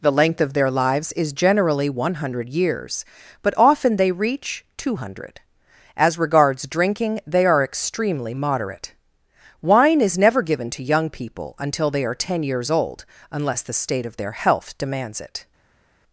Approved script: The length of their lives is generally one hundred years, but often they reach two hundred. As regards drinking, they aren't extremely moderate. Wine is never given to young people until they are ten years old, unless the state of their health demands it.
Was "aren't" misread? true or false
true